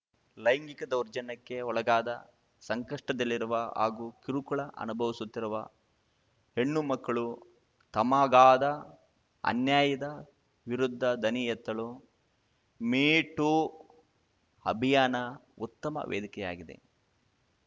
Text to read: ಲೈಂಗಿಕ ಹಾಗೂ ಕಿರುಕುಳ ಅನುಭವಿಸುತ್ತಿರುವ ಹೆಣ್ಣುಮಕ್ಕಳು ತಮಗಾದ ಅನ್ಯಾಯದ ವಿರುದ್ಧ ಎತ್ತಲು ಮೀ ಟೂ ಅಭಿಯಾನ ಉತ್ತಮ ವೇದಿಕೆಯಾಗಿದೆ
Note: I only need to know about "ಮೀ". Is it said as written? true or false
true